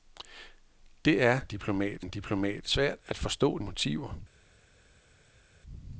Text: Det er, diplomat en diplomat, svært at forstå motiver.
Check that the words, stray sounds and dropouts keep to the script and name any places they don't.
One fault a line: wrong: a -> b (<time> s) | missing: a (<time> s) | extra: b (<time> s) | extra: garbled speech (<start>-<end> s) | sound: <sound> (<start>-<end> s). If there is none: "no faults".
no faults